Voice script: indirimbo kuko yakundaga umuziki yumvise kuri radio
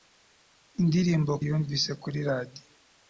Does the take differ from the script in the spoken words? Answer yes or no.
yes